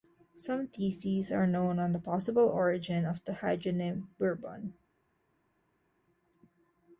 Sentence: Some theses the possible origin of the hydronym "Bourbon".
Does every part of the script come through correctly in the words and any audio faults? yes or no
no